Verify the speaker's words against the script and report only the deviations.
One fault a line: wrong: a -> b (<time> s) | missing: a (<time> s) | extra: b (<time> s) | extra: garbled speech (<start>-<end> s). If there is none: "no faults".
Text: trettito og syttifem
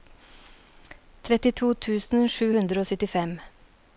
extra: tusen sju hundre (1.9 s)